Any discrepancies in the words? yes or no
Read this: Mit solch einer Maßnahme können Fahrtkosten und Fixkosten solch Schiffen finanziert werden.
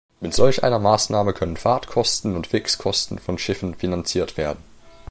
yes